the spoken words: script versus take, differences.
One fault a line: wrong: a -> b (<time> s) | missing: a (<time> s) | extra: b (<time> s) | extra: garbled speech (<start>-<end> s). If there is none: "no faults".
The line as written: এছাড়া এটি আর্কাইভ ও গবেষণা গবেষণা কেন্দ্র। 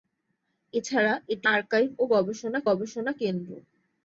no faults